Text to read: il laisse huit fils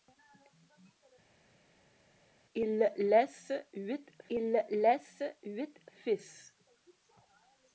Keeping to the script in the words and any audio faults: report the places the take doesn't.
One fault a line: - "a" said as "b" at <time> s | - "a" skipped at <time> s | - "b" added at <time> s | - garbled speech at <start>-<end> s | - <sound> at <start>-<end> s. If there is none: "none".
- "il laisse huit" added at 4.3 s